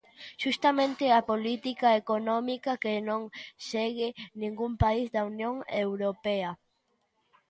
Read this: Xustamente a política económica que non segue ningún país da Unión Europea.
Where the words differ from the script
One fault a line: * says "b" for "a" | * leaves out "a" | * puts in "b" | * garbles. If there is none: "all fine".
all fine